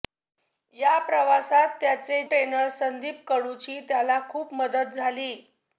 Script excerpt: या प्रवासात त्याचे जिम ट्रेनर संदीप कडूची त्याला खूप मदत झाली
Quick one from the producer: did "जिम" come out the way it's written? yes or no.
no